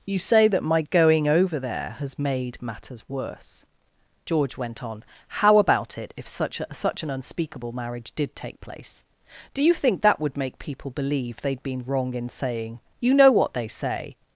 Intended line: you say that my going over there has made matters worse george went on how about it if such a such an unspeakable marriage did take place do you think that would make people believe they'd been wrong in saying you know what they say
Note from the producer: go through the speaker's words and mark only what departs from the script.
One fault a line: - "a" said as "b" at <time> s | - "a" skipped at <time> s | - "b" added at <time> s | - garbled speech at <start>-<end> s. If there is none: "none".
none